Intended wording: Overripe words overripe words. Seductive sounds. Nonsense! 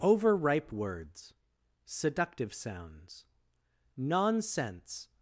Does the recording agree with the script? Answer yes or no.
no